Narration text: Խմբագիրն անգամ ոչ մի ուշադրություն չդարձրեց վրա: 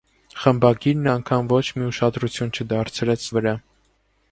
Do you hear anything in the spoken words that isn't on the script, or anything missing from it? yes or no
no